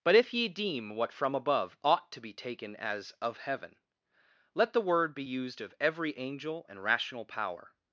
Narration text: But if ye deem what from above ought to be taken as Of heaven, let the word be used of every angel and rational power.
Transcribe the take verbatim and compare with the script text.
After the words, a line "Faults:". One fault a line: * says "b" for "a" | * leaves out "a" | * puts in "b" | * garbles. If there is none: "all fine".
But if ye deem what from above ought to be taken as Of heaven, let the word be used of every angel and rational power.
Faults:
all fine